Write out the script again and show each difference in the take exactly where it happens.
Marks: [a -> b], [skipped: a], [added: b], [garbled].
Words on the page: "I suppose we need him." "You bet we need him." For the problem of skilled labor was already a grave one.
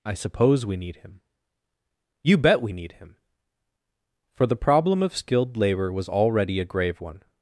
"I suppose we need him." "You bet we need him." For the problem of skilled labor was already a grave one.